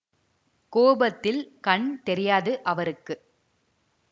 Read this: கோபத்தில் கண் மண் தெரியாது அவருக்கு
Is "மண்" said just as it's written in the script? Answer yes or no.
no